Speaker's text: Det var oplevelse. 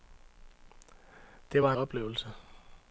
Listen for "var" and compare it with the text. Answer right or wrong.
right